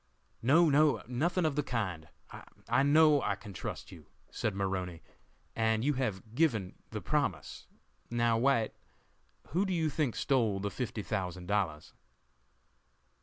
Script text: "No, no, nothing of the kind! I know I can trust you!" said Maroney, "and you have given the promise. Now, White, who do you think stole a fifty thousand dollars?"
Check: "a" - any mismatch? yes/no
yes